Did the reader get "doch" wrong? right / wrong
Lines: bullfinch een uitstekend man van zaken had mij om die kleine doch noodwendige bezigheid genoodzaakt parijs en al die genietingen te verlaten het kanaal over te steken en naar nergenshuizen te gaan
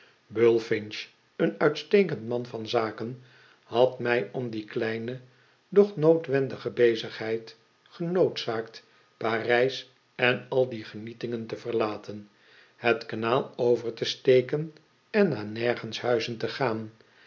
right